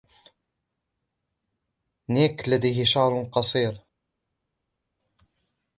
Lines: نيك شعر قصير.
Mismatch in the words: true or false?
true